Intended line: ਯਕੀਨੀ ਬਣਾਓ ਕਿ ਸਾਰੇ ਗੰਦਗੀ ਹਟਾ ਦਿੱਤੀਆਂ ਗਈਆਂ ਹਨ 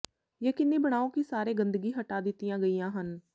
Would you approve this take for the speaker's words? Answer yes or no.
yes